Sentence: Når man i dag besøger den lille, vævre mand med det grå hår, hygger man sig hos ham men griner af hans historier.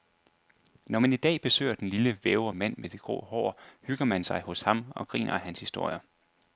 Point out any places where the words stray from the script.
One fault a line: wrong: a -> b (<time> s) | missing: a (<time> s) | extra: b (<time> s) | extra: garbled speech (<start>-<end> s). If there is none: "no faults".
wrong: men -> og (4.9 s)